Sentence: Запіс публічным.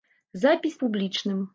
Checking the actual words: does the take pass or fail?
pass